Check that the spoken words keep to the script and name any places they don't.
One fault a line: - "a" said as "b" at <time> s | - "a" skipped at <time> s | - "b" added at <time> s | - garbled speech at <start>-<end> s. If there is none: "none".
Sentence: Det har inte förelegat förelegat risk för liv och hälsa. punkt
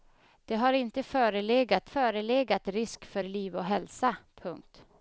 none